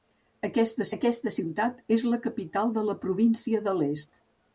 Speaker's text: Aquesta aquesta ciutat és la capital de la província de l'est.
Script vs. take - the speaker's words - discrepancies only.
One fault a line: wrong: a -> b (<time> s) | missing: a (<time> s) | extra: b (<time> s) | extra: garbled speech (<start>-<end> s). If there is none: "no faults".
no faults